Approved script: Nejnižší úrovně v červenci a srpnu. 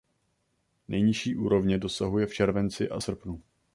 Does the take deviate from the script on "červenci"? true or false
false